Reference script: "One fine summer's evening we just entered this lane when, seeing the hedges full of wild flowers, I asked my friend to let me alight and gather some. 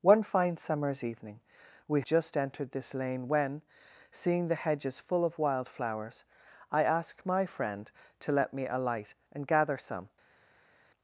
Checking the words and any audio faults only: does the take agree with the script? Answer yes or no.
yes